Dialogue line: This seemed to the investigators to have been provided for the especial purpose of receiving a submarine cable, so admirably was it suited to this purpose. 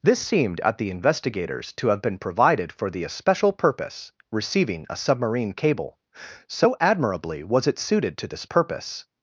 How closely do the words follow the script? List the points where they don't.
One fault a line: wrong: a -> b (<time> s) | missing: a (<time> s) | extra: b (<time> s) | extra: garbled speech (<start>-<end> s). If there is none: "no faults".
wrong: to -> at (0.6 s)
missing: of (4.1 s)